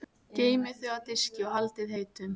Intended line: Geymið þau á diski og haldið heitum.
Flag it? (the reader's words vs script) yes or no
no